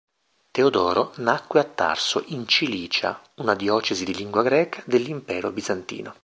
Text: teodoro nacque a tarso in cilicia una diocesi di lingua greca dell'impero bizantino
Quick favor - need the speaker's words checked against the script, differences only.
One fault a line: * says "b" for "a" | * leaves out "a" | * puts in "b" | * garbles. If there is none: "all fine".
all fine